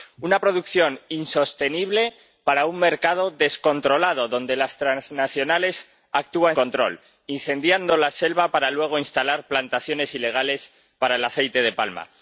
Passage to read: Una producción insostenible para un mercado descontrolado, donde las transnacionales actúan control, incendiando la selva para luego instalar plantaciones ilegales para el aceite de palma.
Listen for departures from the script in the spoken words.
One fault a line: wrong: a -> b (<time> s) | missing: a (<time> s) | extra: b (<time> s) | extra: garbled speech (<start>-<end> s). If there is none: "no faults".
no faults